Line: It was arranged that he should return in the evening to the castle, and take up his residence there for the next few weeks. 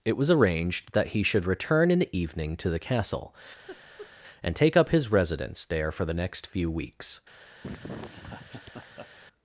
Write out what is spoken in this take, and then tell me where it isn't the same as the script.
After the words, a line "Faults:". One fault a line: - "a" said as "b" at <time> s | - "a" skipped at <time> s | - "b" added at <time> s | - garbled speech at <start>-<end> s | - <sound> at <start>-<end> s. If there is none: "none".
It was arranged that he should return in the evening to the castle, and take up his residence there for the next few weeks.
Faults:
- laugh at 3.7-4.1 s
- laugh at 7.6-9.1 s